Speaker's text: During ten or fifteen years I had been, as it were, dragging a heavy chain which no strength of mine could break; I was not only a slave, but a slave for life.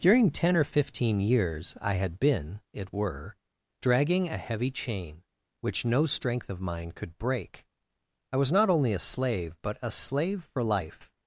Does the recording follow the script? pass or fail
fail